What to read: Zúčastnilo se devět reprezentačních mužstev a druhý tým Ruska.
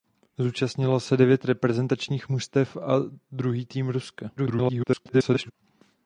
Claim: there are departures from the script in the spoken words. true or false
true